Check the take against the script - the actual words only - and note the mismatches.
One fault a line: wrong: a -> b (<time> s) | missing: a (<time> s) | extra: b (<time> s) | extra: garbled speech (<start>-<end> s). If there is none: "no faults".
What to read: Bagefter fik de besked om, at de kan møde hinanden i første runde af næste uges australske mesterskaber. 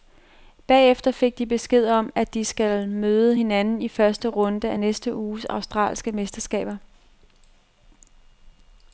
wrong: kan -> skal (2.5 s)